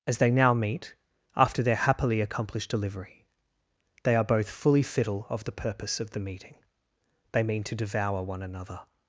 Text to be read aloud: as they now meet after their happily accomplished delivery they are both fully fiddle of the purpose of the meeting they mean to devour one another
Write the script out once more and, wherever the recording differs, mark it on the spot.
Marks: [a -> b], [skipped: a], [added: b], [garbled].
as they now meet after their happily accomplished delivery they are both fully fiddle of the purpose of the meeting they mean to devour one another